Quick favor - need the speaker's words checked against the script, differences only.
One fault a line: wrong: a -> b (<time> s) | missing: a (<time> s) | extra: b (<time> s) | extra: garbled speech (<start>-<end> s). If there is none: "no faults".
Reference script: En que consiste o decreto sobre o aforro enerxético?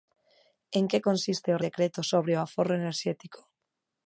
no faults